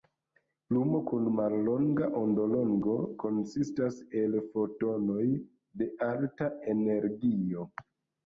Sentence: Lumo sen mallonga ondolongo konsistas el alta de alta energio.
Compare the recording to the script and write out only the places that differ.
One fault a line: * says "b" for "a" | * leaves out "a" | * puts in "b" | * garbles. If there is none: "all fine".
* says "kun" for "sen"
* says "fotonoj" for "alta"